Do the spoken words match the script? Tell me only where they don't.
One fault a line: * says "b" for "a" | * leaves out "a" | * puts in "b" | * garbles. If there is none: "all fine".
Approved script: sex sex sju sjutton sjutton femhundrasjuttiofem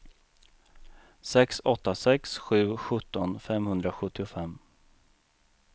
* puts in "åtta"
* leaves out "sjutton"